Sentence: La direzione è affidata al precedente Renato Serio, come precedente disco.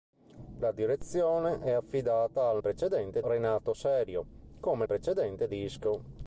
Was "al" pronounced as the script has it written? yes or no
yes